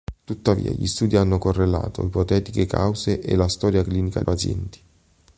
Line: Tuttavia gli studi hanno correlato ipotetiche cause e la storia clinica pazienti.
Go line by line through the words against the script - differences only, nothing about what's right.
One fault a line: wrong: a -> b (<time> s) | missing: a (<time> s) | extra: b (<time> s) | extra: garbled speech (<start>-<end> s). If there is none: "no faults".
no faults